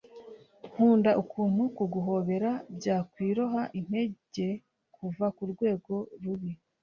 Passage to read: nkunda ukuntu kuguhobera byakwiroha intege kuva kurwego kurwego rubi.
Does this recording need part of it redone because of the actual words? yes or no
yes